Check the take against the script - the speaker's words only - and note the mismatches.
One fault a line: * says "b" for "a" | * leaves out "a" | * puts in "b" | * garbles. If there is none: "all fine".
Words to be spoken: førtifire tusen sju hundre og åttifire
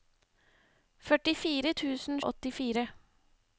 * leaves out "sju hundre"